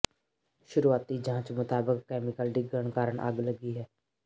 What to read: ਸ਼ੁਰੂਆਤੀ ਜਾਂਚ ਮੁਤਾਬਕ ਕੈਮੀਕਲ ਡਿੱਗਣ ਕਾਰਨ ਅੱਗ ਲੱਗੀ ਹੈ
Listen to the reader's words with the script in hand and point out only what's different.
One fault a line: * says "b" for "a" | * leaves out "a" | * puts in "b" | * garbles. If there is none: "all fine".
all fine